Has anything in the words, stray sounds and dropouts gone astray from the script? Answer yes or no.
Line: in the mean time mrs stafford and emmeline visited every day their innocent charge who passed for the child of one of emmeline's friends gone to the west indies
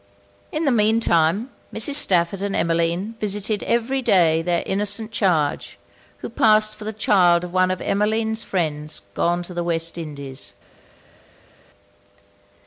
no